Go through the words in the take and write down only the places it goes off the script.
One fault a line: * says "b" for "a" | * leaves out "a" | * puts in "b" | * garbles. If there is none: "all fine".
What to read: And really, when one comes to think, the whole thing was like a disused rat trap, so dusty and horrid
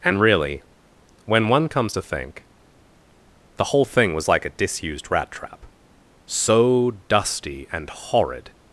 all fine